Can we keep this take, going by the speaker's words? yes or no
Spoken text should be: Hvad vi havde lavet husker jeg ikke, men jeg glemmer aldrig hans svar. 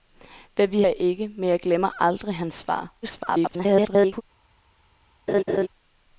no